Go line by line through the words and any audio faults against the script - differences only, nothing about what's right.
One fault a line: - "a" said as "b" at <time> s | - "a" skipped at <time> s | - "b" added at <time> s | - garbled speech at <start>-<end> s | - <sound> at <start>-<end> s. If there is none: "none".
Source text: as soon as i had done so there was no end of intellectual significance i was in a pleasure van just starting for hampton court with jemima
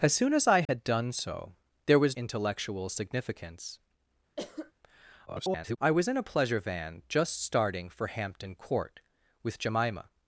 - dropout at 0.6-0.7 s
- "no end of" skipped at 2.2 s
- cough at 4.4-4.7 s
- garbled speech at 5.3-5.8 s